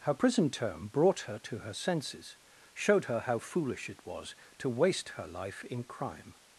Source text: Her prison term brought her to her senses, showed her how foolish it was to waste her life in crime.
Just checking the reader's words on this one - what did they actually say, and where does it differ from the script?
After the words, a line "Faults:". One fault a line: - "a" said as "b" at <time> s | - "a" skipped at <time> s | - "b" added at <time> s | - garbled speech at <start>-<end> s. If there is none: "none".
Her prison term brought her to her senses, showed her how foolish it was to waste her life in crime.
Faults:
none